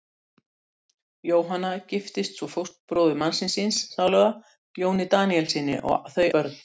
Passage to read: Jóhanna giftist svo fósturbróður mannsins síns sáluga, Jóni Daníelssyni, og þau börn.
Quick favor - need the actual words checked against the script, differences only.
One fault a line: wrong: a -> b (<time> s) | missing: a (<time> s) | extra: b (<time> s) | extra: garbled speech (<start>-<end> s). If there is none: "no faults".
no faults